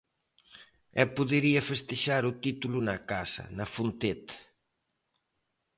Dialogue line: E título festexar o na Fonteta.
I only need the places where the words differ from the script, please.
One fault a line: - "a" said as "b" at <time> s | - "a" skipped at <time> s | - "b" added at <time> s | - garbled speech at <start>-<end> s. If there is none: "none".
- "título" said as "podería" at 1.2 s
- "título na casa" added at 2.5 s